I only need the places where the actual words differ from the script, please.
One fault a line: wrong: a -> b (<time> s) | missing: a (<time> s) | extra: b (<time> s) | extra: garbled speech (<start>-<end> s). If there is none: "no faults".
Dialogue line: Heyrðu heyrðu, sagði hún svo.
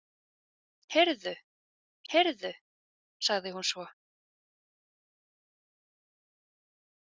no faults